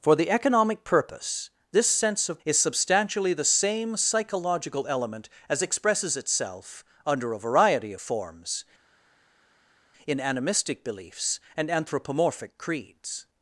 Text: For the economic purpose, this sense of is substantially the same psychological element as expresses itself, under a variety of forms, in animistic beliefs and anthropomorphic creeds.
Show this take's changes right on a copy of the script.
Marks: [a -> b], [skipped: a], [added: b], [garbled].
For the economic purpose, this sense of is substantially the same psychological element as expresses itself, under a variety of forms, in animistic beliefs and anthropomorphic creeds.